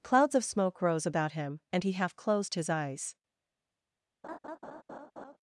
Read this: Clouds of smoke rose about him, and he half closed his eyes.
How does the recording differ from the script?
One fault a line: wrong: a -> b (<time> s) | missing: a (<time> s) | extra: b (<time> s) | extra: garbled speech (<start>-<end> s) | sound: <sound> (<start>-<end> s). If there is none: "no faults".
sound: laugh (4.2-5.4 s)